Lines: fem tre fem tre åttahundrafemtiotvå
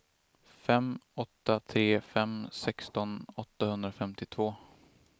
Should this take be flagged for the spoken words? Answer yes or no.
yes